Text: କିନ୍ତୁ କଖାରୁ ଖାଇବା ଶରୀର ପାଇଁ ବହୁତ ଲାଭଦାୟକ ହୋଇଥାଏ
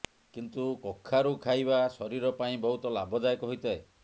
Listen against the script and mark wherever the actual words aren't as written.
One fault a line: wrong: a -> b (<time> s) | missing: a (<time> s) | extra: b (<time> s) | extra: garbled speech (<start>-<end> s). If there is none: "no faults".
no faults